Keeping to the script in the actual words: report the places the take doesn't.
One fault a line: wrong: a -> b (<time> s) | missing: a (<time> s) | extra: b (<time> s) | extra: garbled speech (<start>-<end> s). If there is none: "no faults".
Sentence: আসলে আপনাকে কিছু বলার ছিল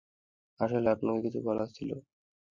no faults